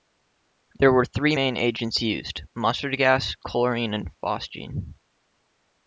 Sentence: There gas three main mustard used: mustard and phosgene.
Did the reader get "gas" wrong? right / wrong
wrong